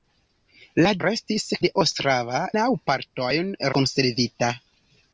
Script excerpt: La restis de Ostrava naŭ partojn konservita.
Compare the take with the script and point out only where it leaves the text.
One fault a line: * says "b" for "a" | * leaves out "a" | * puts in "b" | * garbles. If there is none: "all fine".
all fine